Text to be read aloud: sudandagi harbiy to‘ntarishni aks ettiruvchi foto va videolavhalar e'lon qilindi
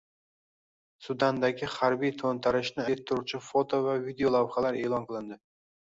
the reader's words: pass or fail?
fail